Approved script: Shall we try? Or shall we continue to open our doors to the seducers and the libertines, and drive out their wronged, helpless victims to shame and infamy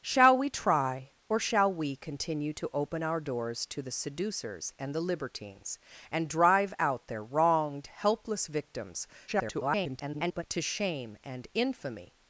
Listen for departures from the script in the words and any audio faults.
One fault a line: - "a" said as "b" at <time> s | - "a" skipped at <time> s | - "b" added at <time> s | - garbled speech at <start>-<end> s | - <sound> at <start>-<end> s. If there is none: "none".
- garbled speech at 9.3-10.4 s